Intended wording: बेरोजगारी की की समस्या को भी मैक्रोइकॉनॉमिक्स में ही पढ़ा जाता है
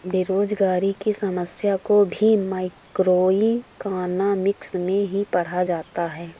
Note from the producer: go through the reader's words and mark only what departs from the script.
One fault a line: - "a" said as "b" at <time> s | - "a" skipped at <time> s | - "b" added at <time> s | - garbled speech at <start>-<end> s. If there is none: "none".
- "की" skipped at 1.1 s